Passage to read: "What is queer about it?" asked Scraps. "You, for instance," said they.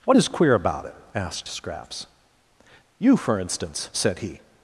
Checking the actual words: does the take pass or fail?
fail